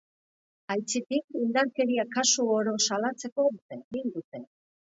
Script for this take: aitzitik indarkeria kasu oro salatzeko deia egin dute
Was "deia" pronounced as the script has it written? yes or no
no